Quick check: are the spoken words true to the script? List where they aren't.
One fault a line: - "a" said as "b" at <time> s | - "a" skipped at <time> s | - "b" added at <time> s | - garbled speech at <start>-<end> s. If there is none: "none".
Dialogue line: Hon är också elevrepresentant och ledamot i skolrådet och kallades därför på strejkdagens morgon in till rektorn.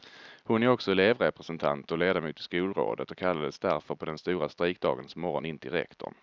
- "den stora" added at 4.0 s